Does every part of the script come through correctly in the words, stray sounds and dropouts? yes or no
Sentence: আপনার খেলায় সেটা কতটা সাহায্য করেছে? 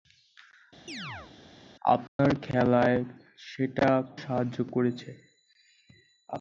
no